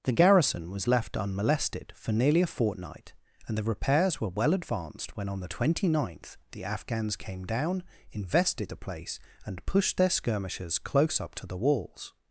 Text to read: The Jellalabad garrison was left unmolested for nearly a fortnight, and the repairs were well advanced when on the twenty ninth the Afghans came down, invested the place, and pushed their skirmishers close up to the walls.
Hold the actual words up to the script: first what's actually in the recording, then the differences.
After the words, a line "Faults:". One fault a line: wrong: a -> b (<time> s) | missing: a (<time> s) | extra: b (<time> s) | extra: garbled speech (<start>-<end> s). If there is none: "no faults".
The garrison was left unmolested for nearly a fortnight, and the repairs were well advanced when on the twenty ninth the Afghans came down, invested the place, and pushed their skirmishers close up to the walls.
Faults:
missing: Jellalabad (0.1 s)